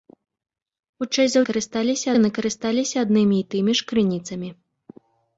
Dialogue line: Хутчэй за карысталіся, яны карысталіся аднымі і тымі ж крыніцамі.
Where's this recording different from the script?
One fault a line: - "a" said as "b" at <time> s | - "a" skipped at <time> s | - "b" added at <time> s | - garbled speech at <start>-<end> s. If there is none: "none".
none